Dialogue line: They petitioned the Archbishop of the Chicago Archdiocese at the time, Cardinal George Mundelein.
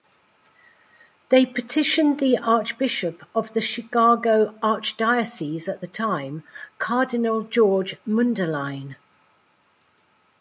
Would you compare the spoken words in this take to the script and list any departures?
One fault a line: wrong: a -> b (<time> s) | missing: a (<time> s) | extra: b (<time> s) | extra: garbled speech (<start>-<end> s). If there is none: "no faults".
no faults